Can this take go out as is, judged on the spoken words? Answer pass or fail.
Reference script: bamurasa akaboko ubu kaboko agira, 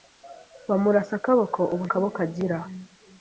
pass